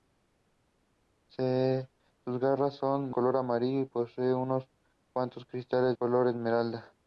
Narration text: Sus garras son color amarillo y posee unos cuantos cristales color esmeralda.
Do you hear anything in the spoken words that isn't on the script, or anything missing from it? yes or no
no